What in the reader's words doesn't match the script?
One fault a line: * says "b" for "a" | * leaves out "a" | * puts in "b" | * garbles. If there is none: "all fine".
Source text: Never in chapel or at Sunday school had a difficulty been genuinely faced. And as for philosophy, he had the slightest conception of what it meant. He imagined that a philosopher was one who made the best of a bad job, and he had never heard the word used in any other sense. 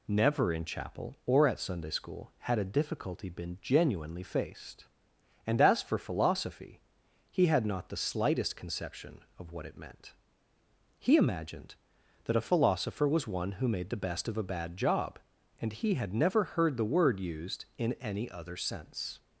* puts in "not"